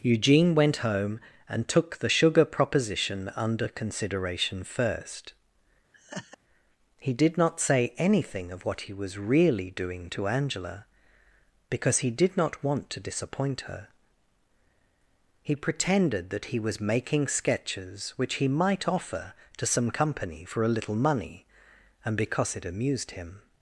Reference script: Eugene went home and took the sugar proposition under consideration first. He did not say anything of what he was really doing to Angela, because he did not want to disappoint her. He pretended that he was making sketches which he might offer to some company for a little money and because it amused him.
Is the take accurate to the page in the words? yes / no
yes